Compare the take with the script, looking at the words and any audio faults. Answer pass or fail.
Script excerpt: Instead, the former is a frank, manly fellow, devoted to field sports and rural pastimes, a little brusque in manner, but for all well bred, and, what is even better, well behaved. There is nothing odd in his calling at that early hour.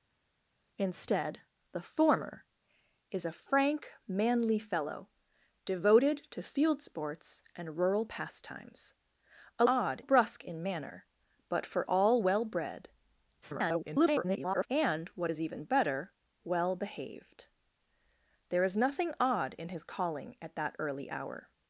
fail